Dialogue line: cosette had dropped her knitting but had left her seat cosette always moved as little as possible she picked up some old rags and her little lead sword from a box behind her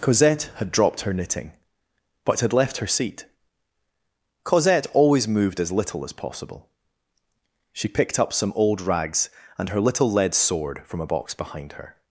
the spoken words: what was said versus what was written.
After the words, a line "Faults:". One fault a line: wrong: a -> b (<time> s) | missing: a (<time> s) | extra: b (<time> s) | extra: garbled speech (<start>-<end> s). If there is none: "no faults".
cosette had dropped her knitting but had left her seat cosette always moved as little as possible she picked up some old rags and her little lead sword from a box behind her
Faults:
no faults